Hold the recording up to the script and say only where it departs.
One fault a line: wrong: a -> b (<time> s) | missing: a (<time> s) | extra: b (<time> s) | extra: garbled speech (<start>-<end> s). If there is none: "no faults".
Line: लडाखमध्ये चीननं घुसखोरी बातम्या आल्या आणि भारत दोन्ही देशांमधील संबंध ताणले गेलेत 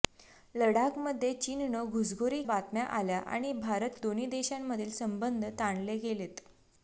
no faults